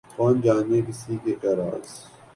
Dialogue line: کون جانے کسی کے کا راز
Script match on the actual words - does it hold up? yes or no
yes